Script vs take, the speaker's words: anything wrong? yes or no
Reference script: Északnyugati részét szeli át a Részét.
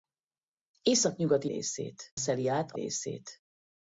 no